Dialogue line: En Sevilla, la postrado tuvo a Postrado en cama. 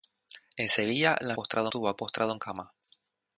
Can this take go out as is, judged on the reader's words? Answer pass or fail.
pass